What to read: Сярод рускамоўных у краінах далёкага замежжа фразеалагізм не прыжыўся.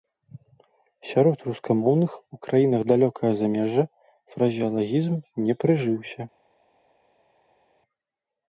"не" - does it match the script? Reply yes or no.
yes